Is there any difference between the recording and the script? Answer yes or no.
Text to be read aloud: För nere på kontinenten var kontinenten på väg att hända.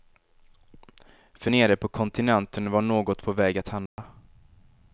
yes